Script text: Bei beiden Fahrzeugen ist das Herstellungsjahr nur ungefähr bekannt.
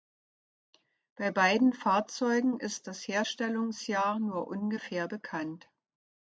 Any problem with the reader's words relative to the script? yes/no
no